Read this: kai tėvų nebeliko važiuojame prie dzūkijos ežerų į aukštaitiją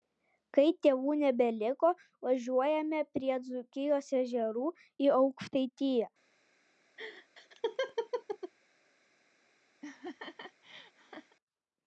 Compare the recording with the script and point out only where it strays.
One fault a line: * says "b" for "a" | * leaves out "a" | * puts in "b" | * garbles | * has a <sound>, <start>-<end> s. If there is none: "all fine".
* has a laugh, 7.0-8.5 s
* has a laugh, 9.8-11.4 s